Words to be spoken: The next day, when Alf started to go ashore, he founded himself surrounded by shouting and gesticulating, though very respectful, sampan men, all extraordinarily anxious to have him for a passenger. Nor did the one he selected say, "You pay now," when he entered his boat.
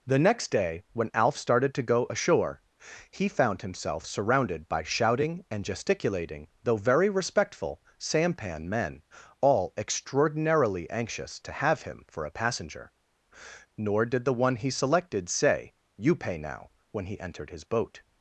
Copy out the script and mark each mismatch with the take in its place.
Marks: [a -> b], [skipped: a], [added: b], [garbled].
The next day, when Alf started to go ashore, he [founded -> found] himself surrounded by shouting and gesticulating, though very respectful, sampan men, all extraordinarily anxious to have him for a passenger. Nor did the one he selected say, "You pay now," when he entered his boat.